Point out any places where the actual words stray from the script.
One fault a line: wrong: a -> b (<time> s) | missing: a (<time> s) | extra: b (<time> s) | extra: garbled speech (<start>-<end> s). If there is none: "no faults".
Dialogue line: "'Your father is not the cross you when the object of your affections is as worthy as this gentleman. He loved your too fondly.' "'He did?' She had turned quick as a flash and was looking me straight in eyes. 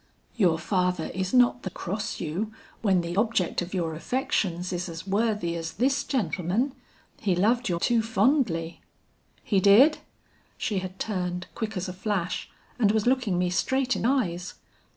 no faults